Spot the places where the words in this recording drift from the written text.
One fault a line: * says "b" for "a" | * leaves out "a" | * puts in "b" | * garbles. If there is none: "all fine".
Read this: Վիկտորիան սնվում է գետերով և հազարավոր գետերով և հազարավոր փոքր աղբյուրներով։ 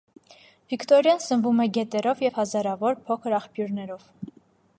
* leaves out "գետերով և հազարավոր"